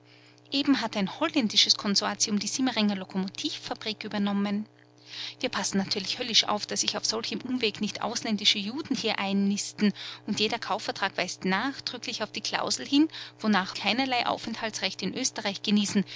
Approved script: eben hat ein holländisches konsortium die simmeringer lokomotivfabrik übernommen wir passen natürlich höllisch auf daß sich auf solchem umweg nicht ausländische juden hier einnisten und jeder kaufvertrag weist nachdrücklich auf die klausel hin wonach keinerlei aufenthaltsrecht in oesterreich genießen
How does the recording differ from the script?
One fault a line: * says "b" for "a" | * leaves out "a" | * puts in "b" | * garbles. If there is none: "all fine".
all fine